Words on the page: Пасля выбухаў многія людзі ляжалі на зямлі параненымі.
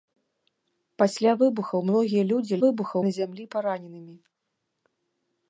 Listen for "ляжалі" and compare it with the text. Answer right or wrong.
wrong